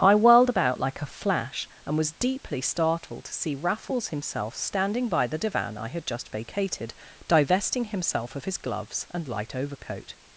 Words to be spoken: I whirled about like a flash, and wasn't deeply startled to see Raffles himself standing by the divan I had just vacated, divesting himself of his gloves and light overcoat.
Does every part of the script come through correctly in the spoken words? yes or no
no